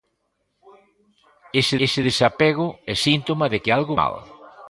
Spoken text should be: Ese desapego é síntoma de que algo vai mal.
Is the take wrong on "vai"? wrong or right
wrong